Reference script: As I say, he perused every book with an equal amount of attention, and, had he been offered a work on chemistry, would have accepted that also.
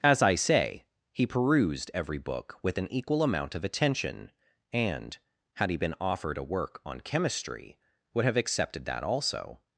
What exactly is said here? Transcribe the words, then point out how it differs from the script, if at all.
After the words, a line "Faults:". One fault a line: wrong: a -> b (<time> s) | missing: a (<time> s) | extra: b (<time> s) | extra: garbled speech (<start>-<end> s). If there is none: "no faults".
As I say, he perused every book with an equal amount of attention, and, had he been offered a work on chemistry, would have accepted that also.
Faults:
no faults